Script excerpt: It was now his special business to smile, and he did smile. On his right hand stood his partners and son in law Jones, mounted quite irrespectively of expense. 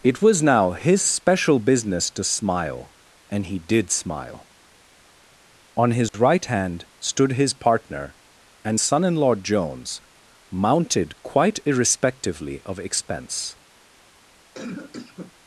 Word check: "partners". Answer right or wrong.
wrong